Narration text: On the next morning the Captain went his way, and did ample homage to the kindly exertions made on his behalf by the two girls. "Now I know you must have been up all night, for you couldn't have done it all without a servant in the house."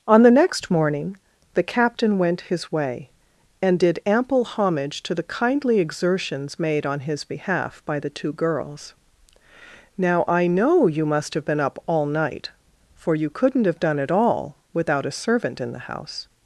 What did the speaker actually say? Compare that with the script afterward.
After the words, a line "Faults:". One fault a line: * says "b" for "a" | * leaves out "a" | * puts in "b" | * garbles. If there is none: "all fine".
On the next morning the Captain went his way, and did ample homage to the kindly exertions made on his behalf by the two girls. "Now I know you must have been up all night, for you couldn't have done it all without a servant in the house."
Faults:
all fine